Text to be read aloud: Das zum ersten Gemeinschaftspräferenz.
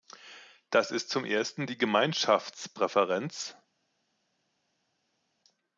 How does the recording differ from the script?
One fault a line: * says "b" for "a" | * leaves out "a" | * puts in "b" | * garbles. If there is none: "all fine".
* puts in "ist"
* puts in "die"